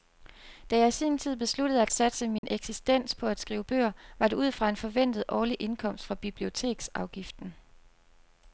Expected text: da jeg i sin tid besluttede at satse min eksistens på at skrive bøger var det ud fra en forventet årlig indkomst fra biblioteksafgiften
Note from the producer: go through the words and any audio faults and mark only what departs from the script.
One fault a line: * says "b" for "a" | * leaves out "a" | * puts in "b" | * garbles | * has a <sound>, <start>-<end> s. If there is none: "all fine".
* has a dropout, 2.4-2.4 s